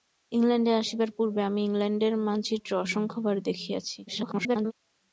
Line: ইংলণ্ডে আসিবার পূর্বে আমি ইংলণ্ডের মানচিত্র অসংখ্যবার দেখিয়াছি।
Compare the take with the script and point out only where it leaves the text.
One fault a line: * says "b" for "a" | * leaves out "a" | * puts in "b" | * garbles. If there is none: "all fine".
* garbles